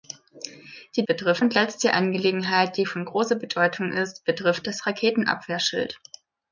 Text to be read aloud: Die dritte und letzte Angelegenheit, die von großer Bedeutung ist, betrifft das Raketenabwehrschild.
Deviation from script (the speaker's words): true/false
true